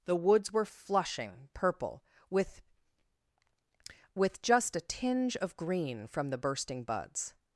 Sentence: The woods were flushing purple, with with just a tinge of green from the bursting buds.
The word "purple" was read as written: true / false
true